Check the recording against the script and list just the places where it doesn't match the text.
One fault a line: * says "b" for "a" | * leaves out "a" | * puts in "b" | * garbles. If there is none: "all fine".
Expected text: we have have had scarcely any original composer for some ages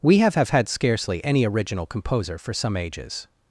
all fine